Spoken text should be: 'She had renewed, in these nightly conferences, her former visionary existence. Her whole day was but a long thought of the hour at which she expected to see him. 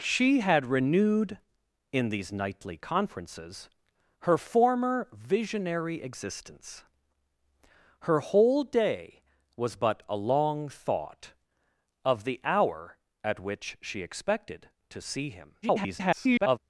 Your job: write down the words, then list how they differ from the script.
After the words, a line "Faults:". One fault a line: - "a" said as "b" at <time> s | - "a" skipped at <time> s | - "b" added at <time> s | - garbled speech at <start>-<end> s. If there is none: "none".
'She had renewed, in these nightly conferences, her former visionary existence. Her whole day was but a long thought of the hour at which she expected to see him. [garbled]
Faults:
- garbled speech at 15.6-16.6 s